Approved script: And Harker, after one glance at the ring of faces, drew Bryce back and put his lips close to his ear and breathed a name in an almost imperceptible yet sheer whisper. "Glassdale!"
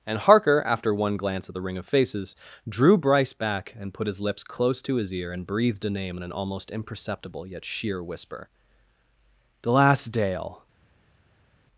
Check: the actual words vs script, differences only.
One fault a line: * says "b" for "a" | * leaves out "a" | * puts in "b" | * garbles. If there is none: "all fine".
all fine